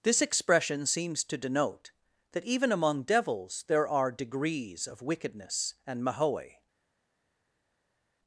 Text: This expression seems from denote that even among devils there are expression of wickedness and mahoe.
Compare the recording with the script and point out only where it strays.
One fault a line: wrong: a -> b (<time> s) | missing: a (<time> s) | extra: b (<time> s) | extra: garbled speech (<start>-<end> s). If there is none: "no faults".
wrong: from -> to (1.2 s)
wrong: expression -> degrees (4.1 s)